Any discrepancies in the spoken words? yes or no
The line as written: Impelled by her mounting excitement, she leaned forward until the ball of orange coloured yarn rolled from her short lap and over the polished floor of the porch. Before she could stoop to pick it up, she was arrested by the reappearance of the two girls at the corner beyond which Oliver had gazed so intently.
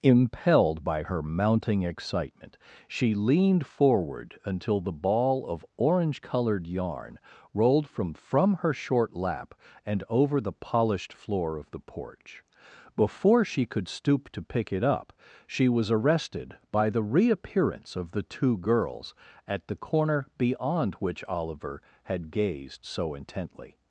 yes